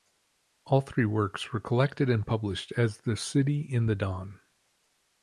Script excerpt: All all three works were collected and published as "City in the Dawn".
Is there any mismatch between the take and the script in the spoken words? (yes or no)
yes